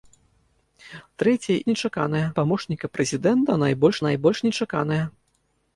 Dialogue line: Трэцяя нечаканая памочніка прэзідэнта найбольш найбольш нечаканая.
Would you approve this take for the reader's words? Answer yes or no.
yes